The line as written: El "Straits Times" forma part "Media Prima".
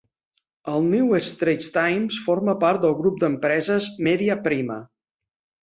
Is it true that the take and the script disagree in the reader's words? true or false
true